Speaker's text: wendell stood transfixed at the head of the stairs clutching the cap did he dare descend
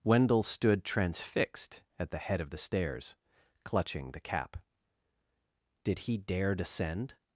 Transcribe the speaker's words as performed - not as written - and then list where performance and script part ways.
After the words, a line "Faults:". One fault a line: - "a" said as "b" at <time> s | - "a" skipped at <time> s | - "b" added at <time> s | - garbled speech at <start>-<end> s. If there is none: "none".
wendell stood transfixed at the head of the stairs clutching the cap did he dare descend
Faults:
none